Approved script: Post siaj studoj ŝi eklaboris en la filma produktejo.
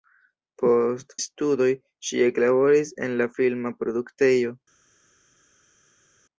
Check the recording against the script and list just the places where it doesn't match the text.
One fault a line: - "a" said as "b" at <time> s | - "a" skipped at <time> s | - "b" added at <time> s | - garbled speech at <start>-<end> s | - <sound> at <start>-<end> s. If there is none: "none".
- "siaj" skipped at 1.1 s